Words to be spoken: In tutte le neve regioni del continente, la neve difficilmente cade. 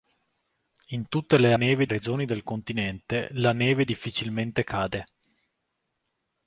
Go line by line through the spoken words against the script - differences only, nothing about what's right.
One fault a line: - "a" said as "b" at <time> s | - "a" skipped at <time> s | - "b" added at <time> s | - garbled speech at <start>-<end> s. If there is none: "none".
none